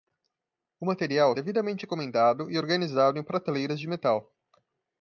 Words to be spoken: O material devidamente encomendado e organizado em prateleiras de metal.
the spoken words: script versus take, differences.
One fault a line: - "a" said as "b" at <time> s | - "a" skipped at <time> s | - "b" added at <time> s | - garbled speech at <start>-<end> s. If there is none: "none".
none